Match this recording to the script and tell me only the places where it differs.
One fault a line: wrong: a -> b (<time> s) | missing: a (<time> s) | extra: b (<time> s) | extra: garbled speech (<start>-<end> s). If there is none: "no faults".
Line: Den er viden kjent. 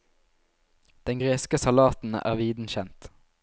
extra: greske salaten (1.2 s)